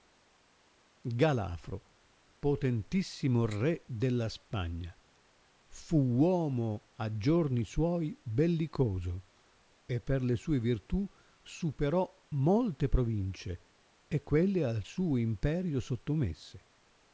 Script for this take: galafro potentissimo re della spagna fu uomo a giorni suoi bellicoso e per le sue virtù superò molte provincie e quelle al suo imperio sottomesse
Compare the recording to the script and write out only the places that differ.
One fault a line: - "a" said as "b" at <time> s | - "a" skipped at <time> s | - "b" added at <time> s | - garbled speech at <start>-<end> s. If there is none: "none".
none